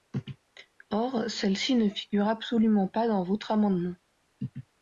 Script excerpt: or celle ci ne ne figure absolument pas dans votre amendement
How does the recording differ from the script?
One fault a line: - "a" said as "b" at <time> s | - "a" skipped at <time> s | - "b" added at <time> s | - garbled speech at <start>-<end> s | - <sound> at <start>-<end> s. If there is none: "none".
- "ne" skipped at 1.9 s